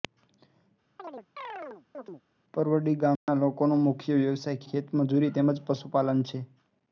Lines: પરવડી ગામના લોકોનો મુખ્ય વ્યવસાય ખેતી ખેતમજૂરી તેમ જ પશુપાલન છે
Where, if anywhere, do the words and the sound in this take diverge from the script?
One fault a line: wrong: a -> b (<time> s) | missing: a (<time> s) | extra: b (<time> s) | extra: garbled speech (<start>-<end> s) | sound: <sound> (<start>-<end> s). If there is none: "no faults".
sound: chirp (1.0-2.2 s)
sound: dropout (3.2-3.3 s)
missing: ખેતી (4.6 s)